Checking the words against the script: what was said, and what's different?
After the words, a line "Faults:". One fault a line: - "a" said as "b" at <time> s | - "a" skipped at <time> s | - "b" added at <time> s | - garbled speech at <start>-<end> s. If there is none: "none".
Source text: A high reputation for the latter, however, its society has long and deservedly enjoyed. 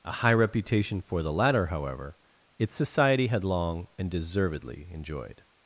A high reputation for the latter, however, its society had long and deservedly enjoyed.
Faults:
- "has" said as "had" at 3.3 s